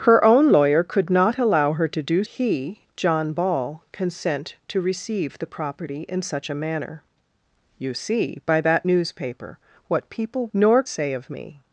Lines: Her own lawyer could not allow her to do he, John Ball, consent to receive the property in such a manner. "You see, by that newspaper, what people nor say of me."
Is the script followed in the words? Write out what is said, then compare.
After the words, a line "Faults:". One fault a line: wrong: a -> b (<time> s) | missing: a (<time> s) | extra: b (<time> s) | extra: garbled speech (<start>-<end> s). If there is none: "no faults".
Her own lawyer could not allow her to do he, John Ball, consent to receive the property in such a manner. "You see, by that newspaper, what people nor say of me."
Faults:
no faults